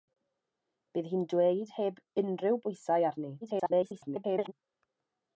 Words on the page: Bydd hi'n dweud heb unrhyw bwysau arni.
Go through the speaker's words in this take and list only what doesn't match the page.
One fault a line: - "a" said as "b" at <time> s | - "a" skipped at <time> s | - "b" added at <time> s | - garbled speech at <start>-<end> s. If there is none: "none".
- garbled speech at 3.4-4.5 s